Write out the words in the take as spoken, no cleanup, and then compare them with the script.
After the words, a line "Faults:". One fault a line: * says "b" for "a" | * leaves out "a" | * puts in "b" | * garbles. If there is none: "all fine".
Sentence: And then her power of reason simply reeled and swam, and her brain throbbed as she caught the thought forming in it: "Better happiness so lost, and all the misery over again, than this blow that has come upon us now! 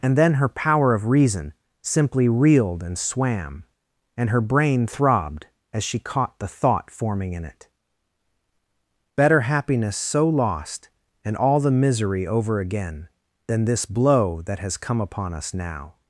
And then her power of reason simply reeled and swam, and her brain throbbed as she caught the thought forming in it: "Better happiness so lost, and all the misery over again, than this blow that has come upon us now!
Faults:
all fine